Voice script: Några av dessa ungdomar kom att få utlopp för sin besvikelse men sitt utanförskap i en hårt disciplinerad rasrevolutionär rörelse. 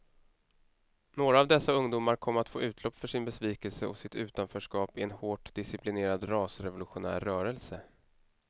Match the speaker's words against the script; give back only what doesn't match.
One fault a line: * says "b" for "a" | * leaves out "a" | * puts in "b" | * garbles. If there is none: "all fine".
* says "och" for "men"